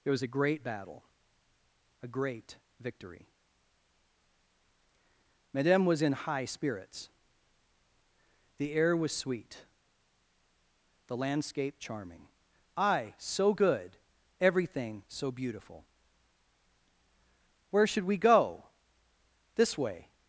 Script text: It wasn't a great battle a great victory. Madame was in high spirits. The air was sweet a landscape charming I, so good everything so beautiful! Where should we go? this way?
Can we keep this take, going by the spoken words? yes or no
no